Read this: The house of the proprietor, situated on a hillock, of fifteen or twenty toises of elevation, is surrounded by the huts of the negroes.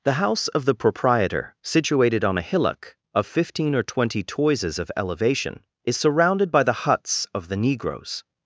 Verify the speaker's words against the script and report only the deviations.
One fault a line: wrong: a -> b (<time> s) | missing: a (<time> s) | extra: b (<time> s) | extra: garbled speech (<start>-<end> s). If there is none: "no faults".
no faults